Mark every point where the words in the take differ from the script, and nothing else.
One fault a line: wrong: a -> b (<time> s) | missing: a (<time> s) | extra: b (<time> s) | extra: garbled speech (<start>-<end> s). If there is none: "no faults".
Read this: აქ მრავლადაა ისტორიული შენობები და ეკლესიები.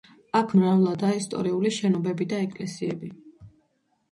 no faults